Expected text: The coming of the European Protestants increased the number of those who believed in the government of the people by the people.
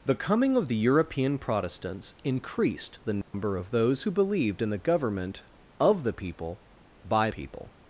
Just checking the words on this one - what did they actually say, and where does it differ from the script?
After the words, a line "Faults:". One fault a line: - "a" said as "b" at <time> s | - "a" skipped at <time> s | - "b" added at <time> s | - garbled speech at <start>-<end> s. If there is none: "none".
The coming of the European Protestants increased the number of those who believed in the government of the people by people.
Faults:
- "the" skipped at 7.3 s